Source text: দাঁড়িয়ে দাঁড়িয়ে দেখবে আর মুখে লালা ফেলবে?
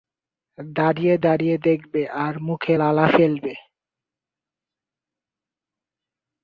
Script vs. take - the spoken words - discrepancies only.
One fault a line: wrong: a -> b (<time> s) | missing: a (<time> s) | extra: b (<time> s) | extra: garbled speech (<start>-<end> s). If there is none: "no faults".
no faults